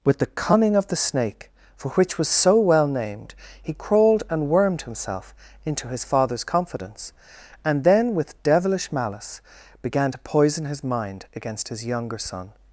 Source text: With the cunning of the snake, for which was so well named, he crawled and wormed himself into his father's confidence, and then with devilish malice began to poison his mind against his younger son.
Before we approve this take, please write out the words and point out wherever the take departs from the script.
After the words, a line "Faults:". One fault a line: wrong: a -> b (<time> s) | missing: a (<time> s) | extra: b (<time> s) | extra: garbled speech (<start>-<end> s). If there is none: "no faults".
With the cunning of the snake, for which was so well named, he crawled and wormed himself into his father's confidence, and then with devilish malice began to poison his mind against his younger son.
Faults:
no faults